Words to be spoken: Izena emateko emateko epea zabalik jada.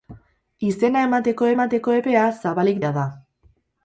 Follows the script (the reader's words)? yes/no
yes